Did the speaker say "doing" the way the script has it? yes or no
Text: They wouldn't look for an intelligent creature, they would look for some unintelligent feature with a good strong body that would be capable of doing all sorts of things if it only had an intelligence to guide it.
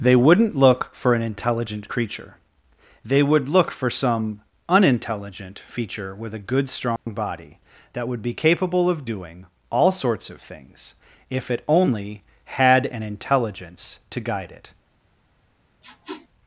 yes